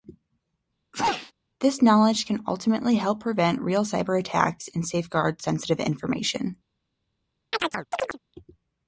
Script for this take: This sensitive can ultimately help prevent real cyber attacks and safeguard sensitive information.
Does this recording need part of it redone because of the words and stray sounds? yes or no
yes